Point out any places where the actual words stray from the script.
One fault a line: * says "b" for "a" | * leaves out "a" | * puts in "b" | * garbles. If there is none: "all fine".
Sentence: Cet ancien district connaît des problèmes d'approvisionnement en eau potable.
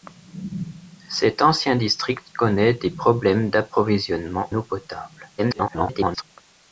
* leaves out "en"
* garbles